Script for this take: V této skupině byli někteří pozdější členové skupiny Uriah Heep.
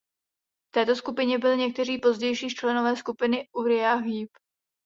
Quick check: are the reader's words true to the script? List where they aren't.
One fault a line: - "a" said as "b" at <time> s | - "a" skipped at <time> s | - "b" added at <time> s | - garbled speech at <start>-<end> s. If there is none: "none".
none